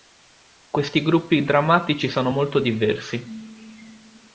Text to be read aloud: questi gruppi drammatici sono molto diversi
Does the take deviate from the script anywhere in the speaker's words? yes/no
no